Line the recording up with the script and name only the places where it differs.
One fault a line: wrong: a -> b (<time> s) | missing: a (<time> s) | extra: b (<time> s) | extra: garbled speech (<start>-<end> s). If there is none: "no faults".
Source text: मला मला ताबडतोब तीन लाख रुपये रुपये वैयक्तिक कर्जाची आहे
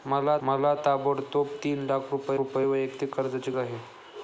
no faults